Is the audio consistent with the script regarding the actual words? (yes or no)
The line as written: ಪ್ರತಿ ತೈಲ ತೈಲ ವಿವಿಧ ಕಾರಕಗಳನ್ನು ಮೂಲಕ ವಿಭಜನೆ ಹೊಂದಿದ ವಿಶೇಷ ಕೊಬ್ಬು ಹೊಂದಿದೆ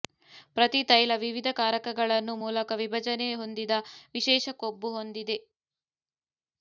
no